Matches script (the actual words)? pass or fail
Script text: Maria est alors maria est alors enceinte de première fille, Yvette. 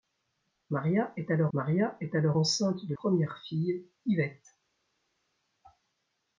pass